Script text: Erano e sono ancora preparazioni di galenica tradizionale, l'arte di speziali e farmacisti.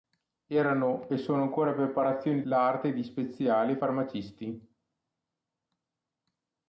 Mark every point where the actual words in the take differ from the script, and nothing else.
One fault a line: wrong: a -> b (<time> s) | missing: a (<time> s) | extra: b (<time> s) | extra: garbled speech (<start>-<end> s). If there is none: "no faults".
missing: di galenica tradizionale (2.4 s)